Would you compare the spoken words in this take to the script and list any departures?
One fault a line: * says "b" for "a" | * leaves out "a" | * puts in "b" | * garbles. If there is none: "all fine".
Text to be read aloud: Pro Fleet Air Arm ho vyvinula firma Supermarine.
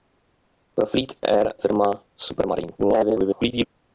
* leaves out "Arm ho vyvinula"
* garbles